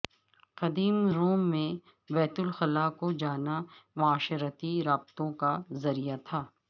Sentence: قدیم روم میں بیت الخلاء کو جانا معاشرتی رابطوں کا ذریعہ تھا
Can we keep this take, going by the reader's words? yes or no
yes